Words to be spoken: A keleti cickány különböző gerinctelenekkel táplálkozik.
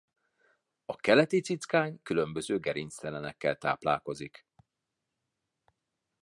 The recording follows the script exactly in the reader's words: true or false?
true